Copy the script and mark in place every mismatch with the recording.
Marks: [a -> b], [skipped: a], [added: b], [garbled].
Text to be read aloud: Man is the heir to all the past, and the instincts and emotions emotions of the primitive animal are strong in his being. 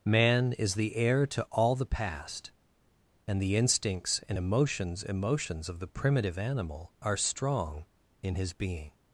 Man is the heir to all the past, and the instincts and emotions emotions of the primitive animal are strong in his being.